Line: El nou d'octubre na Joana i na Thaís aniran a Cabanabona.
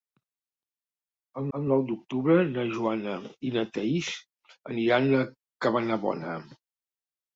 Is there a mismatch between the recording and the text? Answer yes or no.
yes